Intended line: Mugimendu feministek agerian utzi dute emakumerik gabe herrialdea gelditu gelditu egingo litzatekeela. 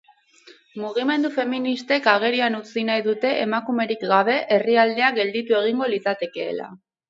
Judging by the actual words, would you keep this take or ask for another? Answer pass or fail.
fail